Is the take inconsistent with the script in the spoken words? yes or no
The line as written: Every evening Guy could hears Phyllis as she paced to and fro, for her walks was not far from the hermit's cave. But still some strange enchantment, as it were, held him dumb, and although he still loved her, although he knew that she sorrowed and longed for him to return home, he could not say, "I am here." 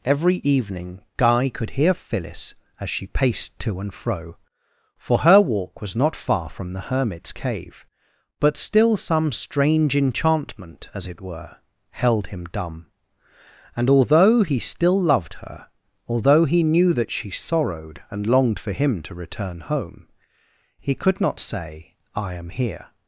yes